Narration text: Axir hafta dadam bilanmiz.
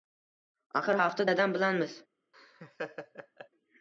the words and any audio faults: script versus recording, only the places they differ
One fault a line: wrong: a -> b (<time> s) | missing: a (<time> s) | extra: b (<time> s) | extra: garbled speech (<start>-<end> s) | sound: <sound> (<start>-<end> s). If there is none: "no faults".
sound: laugh (2.3-3.5 s)